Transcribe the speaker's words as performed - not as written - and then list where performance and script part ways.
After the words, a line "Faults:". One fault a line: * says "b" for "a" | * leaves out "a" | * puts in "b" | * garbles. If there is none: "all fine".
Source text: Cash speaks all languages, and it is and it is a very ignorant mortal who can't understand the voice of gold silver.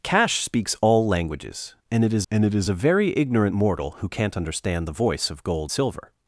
Cash speaks all languages, and it is and it is a very ignorant mortal who can't understand the voice of gold silver.
Faults:
all fine